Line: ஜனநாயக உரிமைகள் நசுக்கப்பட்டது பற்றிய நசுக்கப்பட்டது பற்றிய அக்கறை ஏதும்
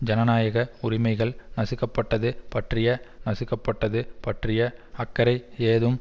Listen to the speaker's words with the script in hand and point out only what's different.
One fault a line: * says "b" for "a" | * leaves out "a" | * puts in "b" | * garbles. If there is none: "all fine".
all fine